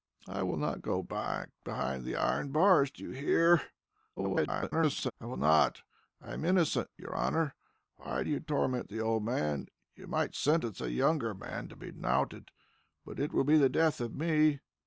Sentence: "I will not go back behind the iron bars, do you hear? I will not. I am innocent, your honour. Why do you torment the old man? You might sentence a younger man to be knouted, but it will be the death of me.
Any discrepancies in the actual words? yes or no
yes